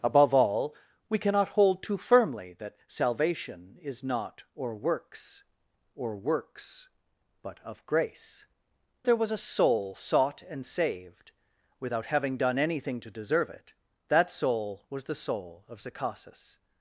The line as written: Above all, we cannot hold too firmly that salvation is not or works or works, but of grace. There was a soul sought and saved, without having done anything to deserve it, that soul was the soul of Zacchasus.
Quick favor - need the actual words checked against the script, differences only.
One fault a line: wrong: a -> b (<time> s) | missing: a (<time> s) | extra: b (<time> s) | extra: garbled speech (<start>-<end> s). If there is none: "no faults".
no faults